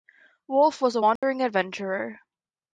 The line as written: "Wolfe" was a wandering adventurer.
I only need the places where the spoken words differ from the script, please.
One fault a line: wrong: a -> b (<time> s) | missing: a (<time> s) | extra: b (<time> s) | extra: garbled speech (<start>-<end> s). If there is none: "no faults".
no faults